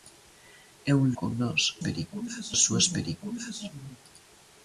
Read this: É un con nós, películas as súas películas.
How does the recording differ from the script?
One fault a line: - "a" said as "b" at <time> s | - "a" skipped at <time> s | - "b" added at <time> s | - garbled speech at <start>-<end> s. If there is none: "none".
none